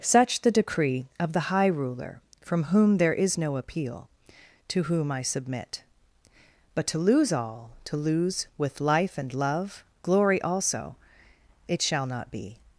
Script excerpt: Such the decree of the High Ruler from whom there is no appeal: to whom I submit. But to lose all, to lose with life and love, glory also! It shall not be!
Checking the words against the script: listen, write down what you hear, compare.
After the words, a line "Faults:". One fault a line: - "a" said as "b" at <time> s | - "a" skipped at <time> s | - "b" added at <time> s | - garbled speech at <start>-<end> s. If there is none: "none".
Such the decree of the High Ruler from whom there is no appeal: to whom I submit. But to lose all, to lose with life and love, glory also! It shall not be!
Faults:
none